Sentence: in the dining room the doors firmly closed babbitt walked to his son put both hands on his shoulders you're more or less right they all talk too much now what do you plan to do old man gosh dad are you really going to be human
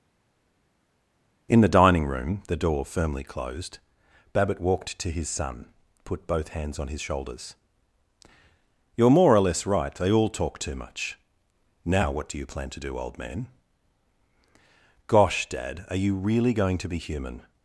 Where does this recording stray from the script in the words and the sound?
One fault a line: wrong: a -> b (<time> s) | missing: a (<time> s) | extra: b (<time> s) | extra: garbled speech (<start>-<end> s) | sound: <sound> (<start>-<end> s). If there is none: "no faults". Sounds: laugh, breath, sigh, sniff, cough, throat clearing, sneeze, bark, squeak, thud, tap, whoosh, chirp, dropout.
wrong: doors -> door (2.6 s)